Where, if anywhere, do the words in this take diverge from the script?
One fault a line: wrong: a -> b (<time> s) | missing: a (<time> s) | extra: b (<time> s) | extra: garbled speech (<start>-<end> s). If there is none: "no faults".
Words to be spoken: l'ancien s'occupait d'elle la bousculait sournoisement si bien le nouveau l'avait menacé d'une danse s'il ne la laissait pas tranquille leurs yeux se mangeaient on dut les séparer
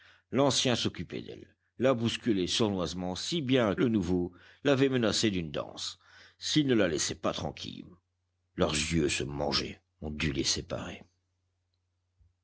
no faults